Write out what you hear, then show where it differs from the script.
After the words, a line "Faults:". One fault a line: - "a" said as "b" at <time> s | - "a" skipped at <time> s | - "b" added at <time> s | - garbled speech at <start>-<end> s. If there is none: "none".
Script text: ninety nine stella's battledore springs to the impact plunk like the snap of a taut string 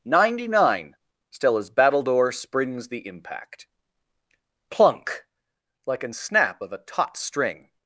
ninety nine stella's battledore springs the impact plunk like an snap of a taut string
Faults:
- "to" skipped at 2.9 s
- "the" said as "an" at 6.0 s